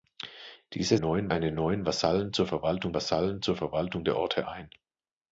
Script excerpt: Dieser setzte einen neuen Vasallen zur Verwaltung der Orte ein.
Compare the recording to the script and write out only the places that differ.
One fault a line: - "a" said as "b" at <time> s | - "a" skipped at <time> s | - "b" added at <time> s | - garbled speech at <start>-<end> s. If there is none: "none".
- "setzte" said as "neuen" at 1.0 s
- "Vasallen zur Verwaltung" added at 2.9 s